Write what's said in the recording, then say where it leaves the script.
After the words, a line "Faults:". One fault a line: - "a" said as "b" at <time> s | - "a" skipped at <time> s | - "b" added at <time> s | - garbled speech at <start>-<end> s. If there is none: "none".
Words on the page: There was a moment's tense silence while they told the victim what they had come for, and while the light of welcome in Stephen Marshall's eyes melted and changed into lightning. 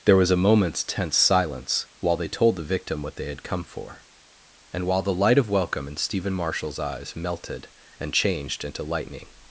There was a moment's tense silence while they told the victim what they had come for, and while the light of welcome in Stephen Marshall's eyes melted and changed into lightning.
Faults:
none